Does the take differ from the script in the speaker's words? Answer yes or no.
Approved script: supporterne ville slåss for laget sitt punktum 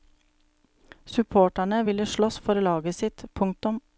no